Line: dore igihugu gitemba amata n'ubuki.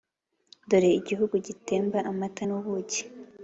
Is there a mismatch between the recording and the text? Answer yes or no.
no